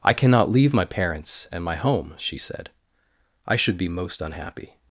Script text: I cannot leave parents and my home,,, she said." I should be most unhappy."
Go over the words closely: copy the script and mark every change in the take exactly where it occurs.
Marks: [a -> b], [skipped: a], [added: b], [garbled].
I cannot leave [added: my] parents and my home,,, she said." I should be most unhappy."